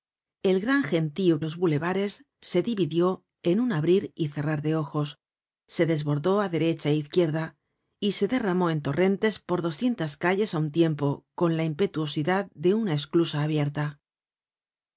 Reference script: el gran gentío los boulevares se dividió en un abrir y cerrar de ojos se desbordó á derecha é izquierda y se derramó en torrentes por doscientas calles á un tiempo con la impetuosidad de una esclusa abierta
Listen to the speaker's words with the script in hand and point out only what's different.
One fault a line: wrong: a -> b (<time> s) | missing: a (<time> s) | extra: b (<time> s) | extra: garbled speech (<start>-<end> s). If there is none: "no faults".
no faults